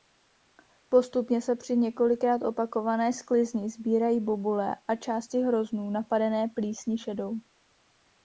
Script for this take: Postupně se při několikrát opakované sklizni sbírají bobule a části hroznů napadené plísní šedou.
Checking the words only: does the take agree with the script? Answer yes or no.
yes